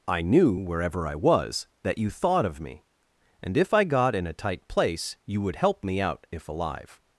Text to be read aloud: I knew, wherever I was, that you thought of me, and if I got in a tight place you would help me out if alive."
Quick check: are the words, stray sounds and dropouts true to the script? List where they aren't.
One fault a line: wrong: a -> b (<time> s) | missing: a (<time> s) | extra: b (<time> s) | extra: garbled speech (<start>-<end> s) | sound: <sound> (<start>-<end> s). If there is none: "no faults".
no faults